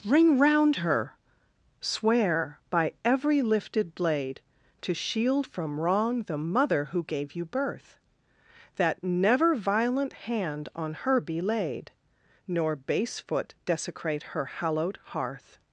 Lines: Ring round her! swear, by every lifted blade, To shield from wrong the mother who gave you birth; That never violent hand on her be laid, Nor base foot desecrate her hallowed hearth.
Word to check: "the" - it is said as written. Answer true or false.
true